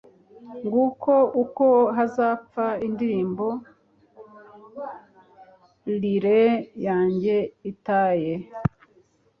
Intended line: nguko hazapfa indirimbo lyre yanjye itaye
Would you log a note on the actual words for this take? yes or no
yes